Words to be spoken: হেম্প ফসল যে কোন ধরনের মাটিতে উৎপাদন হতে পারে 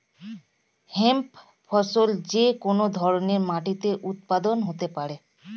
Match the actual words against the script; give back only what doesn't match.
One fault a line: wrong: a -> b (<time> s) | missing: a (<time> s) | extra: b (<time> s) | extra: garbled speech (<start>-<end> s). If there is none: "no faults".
no faults